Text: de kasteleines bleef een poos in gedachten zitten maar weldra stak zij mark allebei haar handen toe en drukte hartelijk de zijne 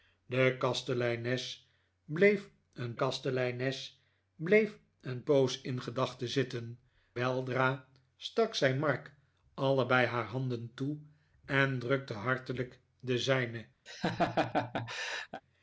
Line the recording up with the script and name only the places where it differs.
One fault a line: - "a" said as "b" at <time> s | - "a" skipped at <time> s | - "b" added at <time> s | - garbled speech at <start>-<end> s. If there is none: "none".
- "kasteleines bleef een" added at 3.0 s
- "maar" skipped at 6.8 s